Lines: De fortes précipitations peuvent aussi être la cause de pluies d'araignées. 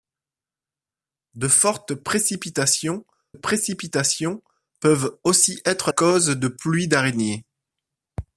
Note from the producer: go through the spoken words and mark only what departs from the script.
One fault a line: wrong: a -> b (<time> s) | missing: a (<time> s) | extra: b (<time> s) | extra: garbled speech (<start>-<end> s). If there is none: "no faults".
extra: précipitations (3.3 s)
missing: la (5.9 s)